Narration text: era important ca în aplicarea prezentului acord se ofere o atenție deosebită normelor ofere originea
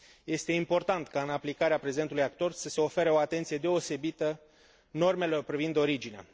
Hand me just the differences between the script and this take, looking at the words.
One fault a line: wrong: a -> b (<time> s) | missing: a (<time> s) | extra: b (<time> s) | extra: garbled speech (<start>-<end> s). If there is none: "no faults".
wrong: era -> este (0.2 s)
extra: să (2.5 s)
wrong: ofere -> privind (5.4 s)